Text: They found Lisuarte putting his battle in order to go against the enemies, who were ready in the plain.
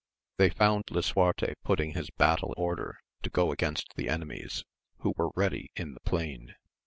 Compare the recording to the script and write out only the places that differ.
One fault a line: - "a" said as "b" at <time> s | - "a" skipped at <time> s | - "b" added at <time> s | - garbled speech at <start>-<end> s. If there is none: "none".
- "in" skipped at 2.5 s